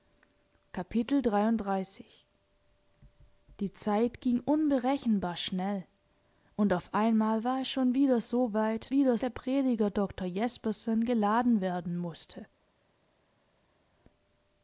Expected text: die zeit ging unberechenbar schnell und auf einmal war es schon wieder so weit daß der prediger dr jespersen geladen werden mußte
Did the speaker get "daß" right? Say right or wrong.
wrong